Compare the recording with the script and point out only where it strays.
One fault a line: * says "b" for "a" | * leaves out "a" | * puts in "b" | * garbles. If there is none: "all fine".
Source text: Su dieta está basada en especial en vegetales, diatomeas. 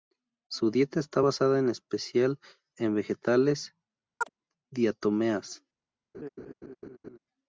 all fine